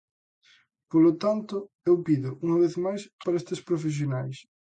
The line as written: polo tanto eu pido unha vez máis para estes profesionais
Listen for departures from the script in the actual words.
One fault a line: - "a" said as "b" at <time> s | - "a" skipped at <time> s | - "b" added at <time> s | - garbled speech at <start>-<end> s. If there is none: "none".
none